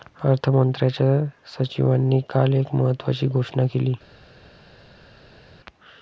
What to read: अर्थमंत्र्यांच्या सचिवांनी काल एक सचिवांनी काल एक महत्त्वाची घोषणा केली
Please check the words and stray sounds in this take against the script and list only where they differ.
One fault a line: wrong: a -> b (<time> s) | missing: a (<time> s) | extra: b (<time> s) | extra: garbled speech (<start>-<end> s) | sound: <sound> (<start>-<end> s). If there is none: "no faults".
missing: सचिवांनी काल एक (2.8 s)